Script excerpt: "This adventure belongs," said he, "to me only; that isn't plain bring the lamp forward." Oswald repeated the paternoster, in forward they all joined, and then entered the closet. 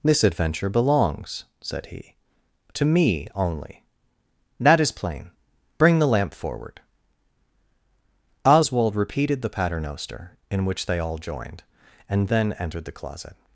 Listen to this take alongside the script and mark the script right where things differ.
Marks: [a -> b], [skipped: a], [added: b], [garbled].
"This adventure belongs," said he, "to me only; that [isn't -> is] plain bring the lamp forward." Oswald repeated the paternoster, in [forward -> which] they all joined, and then entered the closet.